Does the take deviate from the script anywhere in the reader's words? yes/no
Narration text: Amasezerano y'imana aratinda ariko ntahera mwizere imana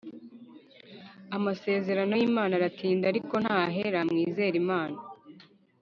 no